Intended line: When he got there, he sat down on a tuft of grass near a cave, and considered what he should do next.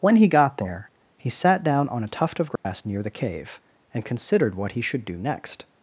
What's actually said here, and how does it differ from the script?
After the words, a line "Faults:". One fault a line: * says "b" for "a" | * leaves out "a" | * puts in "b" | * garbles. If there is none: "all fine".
When he got there, he sat down on a tuft of grass near the cave, and considered what he should do next.
Faults:
* says "the" for "a"